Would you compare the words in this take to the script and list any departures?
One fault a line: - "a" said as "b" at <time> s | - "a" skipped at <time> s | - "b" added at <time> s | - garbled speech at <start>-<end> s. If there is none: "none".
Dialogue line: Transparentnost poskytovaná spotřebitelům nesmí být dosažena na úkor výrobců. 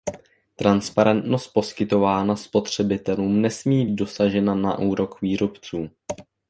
- "být" skipped at 3.8 s